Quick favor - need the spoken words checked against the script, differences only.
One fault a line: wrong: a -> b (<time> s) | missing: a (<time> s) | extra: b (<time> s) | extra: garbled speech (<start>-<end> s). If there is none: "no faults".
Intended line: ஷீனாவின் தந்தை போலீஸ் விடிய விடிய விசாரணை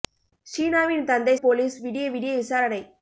no faults